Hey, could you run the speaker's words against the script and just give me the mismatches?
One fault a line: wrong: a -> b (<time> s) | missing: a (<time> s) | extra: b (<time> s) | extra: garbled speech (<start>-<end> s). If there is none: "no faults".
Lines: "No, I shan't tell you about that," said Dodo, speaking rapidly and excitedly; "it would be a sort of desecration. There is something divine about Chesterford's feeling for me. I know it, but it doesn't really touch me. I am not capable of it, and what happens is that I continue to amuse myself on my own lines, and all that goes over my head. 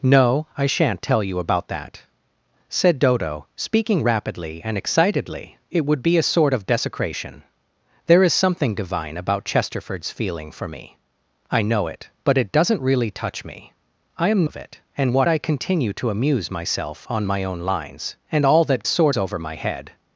missing: not capable (14.5 s)
missing: happens is that (15.3 s)
wrong: goes -> sort (18.9 s)